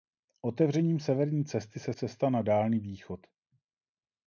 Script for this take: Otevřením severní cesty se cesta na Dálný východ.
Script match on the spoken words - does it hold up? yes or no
yes